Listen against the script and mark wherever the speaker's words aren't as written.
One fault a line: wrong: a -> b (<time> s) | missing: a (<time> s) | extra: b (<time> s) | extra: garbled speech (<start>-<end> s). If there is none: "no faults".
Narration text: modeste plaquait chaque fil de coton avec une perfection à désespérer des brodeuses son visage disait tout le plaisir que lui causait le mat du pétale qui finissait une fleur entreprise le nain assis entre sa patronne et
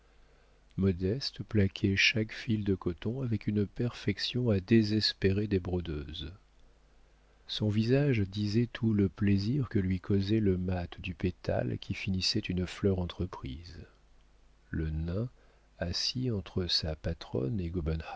no faults